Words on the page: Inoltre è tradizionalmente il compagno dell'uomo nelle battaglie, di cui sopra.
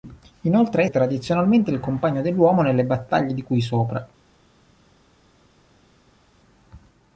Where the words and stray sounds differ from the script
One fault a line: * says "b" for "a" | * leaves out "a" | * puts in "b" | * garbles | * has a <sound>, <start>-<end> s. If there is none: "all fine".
all fine